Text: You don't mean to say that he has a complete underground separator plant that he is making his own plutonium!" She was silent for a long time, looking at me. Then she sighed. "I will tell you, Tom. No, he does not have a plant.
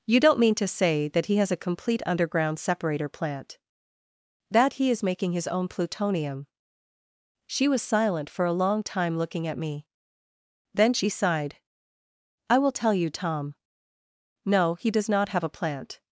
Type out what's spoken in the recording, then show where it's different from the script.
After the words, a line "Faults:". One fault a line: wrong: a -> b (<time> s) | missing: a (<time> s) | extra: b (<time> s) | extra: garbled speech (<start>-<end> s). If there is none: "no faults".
You don't mean to say that he has a complete underground separator plant that he is making his own plutonium!" She was silent for a long time, looking at me. Then she sighed. "I will tell you, Tom. No, he does not have a plant.
Faults:
no faults